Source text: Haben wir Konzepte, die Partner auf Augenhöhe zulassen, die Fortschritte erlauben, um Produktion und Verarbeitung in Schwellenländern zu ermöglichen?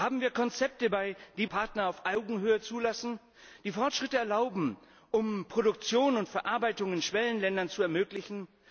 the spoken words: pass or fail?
pass